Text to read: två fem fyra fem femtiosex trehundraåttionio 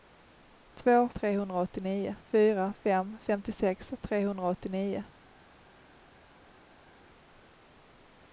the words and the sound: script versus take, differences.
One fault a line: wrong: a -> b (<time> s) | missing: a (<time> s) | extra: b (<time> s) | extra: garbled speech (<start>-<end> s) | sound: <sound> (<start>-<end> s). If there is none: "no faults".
wrong: fem -> trehundraåttionio (1.1 s)